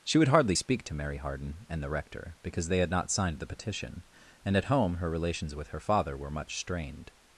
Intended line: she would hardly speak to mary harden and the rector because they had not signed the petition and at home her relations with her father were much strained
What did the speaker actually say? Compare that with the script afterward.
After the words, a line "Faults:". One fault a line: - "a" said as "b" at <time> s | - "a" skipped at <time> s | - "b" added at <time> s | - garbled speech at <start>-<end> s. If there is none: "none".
she would hardly speak to mary harden and the rector because they had not signed the petition and at home her relations with her father were much strained
Faults:
none